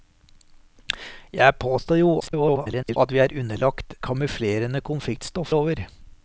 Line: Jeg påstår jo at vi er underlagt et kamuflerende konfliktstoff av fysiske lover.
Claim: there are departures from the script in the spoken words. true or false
true